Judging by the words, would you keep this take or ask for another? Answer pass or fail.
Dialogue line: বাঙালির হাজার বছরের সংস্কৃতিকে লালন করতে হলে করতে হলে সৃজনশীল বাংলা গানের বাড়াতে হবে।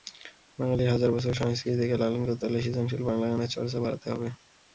fail